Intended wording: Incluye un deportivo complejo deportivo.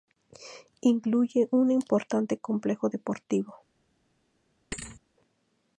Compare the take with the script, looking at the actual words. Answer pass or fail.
fail